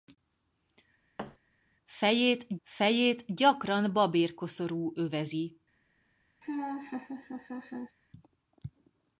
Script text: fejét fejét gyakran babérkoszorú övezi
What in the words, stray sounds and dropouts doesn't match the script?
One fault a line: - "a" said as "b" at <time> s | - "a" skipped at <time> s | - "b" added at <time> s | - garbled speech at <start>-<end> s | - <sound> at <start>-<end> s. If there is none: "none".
- thud at 1.2-1.4 s
- laugh at 6.4-8.0 s